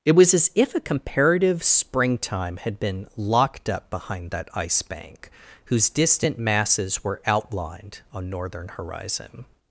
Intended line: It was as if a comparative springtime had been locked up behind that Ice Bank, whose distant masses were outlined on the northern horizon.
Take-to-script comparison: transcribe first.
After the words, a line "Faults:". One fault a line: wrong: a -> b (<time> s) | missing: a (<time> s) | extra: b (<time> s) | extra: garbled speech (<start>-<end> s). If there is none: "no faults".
It was as if a comparative springtime had been locked up behind that Ice Bank, whose distant masses were outlined on northern horizon.
Faults:
missing: the (8.3 s)